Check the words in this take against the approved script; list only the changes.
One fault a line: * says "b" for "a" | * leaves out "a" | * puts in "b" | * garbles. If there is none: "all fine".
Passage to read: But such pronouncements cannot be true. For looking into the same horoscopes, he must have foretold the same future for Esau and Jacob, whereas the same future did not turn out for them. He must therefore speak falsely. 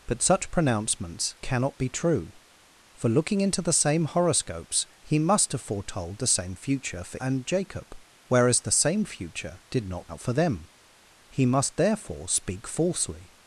* leaves out "Esau"
* leaves out "turn"